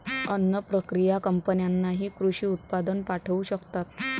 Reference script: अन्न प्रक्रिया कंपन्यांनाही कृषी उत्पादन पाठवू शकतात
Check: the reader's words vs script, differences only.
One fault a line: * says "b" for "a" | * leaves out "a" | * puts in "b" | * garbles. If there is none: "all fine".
all fine